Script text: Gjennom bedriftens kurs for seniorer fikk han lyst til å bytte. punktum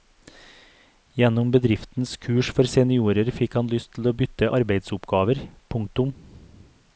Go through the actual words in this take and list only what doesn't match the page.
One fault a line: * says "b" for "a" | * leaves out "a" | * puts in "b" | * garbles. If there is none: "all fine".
* puts in "arbeidsoppgaver"